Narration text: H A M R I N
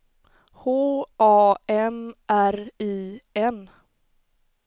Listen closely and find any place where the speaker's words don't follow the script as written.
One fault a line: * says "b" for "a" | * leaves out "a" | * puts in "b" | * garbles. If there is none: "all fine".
all fine